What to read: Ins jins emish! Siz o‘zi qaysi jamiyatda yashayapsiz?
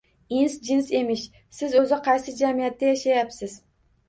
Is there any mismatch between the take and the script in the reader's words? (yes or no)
no